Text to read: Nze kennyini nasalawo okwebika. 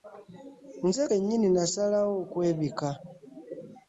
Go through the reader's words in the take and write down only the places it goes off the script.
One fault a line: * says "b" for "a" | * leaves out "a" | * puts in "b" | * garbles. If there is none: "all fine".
all fine